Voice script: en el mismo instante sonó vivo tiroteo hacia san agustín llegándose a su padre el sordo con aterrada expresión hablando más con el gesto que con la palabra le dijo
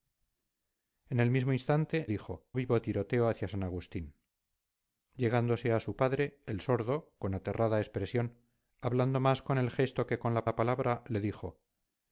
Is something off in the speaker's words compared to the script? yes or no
yes